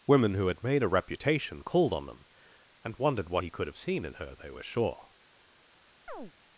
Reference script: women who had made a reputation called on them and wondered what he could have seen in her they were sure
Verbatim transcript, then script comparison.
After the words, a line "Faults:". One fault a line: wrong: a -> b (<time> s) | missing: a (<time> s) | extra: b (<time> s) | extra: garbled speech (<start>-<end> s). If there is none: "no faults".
women who had made a reputation called on them and wondered what he could have seen in her they were sure
Faults:
no faults